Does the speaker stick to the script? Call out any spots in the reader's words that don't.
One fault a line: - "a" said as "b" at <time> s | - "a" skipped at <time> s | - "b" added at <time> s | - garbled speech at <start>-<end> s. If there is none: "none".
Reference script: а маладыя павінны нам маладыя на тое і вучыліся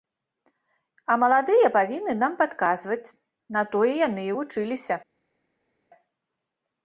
- "маладыя" said as "падказваць" at 2.4 s
- "яны" added at 4.1 s